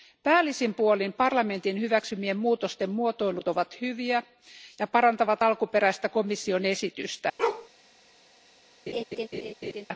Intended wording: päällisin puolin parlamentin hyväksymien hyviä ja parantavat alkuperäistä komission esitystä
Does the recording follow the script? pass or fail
fail